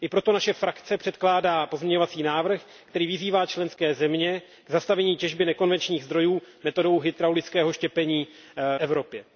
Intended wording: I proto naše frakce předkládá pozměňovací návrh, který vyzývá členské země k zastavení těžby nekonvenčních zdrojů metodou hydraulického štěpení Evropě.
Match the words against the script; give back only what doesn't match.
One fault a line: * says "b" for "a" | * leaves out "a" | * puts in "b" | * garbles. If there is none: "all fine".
all fine